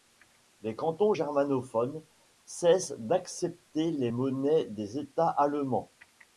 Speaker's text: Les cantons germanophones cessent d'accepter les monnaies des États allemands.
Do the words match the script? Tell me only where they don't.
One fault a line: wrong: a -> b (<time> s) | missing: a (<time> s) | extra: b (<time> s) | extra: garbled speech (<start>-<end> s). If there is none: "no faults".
no faults